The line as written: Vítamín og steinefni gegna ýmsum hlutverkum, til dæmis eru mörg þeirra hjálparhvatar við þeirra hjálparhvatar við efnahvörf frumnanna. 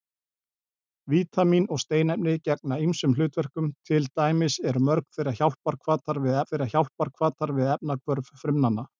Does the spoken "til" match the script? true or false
true